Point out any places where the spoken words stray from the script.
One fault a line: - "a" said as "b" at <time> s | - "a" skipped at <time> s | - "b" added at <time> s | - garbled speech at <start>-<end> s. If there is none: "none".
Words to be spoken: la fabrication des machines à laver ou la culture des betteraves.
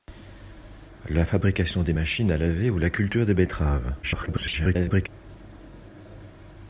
- garbled speech at 4.0-5.1 s